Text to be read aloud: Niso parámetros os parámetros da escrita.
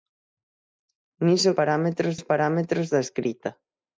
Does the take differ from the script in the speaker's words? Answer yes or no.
no